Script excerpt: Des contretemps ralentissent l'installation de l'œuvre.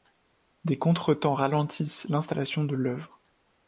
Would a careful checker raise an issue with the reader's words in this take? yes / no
no